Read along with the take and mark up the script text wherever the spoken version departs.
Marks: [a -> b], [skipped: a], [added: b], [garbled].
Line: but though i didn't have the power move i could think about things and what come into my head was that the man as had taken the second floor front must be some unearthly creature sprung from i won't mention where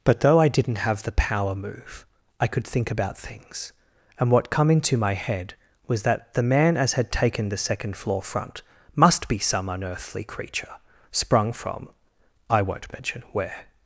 but though i didn't have the power move i could think about things and what come into my head was that the man as had taken the second floor front must be some unearthly creature sprung from i won't mention where